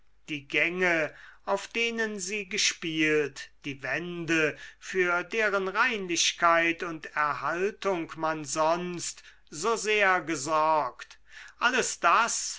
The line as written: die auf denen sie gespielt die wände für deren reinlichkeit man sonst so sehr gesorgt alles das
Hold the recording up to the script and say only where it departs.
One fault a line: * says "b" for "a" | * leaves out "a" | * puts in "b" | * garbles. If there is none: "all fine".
* puts in "gänge"
* puts in "und erhaltung"